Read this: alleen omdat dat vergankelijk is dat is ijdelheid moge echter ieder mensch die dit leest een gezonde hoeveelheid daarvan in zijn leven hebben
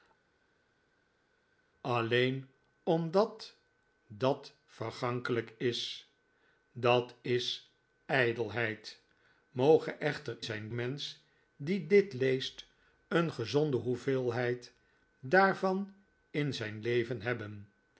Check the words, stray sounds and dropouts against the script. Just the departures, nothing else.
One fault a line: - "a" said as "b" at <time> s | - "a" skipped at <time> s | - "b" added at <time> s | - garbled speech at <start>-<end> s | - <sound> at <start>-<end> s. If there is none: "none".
- "ieder" said as "zijn" at 10.4 s